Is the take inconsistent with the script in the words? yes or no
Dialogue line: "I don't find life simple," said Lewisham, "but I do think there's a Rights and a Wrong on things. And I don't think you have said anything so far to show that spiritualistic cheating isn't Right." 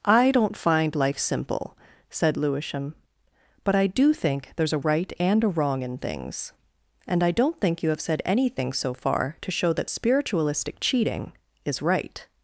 yes